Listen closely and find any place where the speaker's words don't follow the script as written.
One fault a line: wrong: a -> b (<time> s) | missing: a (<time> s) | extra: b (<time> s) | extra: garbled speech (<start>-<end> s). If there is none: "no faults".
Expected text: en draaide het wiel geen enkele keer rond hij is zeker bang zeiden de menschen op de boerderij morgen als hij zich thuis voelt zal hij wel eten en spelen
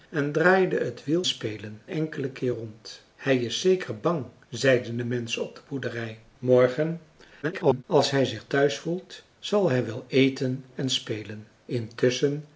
wrong: geen -> spelen (1.2 s)
extra: garbled speech (7.4-7.8 s)